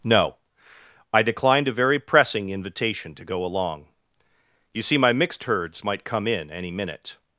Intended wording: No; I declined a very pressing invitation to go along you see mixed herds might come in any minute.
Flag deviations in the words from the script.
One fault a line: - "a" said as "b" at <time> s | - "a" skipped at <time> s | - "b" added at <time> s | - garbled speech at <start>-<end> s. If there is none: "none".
- "my" added at 5.0 s